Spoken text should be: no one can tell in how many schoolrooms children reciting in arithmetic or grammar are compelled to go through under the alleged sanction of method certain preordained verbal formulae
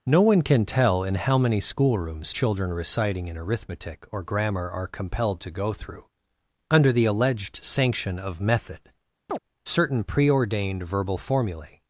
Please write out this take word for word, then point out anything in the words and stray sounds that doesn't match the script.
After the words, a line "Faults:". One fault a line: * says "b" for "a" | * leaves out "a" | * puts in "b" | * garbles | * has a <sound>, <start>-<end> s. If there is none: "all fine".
no one can tell in how many schoolrooms children reciting in arithmetic or grammar are compelled to go through under the alleged sanction of method certain preordained verbal formulae
Faults:
* has a chirp, 9.3-9.4 s